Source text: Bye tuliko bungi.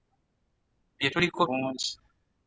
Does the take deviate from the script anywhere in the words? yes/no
no